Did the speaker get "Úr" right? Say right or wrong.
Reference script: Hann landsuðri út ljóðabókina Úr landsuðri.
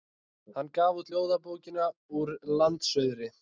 right